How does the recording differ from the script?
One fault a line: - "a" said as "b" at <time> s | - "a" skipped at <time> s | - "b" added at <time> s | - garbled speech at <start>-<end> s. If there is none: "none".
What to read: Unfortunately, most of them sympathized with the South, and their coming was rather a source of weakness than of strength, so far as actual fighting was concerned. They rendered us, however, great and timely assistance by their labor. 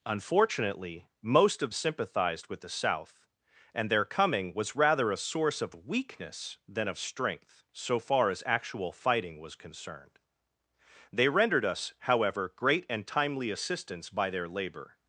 - "them" skipped at 1.7 s